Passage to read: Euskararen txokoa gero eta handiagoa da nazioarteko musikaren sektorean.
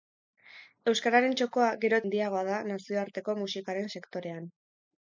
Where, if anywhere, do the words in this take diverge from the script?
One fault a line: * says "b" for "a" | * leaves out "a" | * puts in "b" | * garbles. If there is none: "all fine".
* leaves out "eta"